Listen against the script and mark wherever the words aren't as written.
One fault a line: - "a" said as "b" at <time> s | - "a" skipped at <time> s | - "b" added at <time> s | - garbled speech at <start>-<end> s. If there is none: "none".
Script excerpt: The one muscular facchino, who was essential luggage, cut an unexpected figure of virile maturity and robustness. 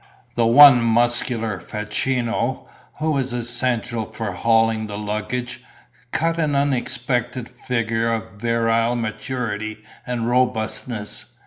- "for hauling the" added at 4.0 s